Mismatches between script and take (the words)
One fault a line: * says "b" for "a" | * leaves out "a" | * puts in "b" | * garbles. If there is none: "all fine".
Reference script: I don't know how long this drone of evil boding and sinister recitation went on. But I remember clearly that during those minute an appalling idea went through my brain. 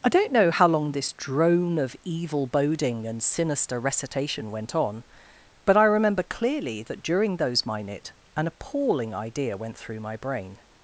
all fine